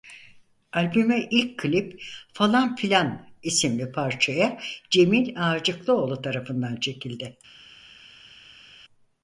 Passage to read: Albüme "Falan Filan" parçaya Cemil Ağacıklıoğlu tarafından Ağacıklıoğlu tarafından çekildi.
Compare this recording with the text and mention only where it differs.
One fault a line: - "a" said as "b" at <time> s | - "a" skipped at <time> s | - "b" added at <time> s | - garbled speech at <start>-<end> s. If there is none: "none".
- "ilk klip" added at 1.3 s
- "isimli" added at 3.4 s
- "Ağacıklıoğlu tarafından" skipped at 6.7 s